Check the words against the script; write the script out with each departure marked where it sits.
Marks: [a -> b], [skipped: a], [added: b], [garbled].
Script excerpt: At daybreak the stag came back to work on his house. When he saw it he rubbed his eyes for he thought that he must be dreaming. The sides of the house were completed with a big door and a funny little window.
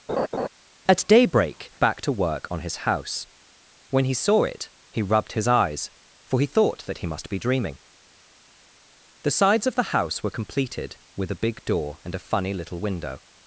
At daybreak [skipped: the stag came] back to work on his house. When he saw it he rubbed his eyes for he thought that he must be dreaming. The sides of the house were completed with a big door and a funny little window.